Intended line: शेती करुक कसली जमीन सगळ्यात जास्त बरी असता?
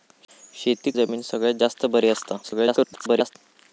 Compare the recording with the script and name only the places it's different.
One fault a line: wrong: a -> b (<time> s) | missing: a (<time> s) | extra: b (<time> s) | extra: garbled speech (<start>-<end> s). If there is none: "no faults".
missing: करुक कसली (0.9 s)
extra: garbled speech (2.4-3.4 s)